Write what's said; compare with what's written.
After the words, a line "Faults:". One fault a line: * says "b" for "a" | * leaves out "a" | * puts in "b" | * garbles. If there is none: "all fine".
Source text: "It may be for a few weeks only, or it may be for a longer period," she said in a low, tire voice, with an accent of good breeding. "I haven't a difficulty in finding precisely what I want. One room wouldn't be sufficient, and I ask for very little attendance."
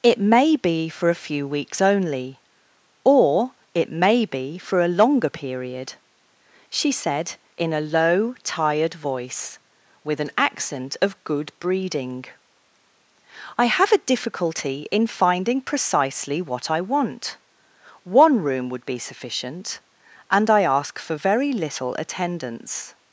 "It may be for a few weeks only, or it may be for a longer period," she said in a low, tired voice, with an accent of good breeding. "I have a difficulty in finding precisely what I want. One room would be sufficient, and I ask for very little attendance."
Faults:
* says "tired" for "tire"
* says "have" for "haven't"
* says "would" for "wouldn't"